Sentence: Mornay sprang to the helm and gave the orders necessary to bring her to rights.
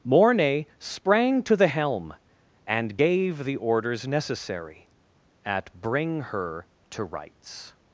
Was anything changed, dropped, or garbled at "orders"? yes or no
no